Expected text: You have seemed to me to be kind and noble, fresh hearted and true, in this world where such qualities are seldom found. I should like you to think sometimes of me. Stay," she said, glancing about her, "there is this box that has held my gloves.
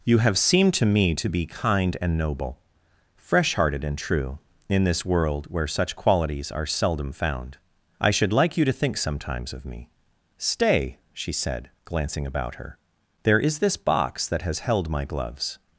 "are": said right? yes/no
yes